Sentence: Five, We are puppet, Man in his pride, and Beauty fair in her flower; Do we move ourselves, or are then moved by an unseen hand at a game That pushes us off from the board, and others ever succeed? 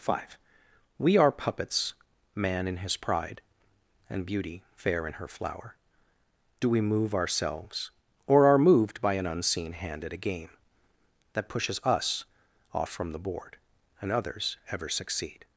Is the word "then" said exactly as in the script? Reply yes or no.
no